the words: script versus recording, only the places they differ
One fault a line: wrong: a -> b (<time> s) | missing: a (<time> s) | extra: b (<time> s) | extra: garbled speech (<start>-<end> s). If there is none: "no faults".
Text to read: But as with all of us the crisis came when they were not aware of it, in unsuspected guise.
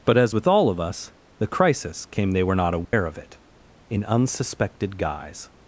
missing: when (2.3 s)